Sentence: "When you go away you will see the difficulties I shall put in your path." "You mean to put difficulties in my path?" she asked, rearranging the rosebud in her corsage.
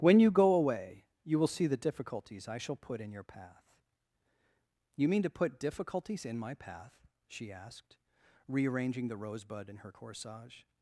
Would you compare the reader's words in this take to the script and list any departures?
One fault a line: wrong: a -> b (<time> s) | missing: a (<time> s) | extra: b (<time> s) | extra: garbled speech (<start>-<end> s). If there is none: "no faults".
no faults